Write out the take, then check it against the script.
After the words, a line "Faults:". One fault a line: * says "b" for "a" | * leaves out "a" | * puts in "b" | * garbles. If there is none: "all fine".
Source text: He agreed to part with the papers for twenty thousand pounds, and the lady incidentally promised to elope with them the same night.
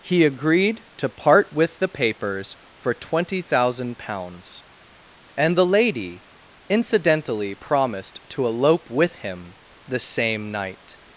He agreed to part with the papers for twenty thousand pounds, and the lady incidentally promised to elope with him the same night.
Faults:
* says "him" for "them"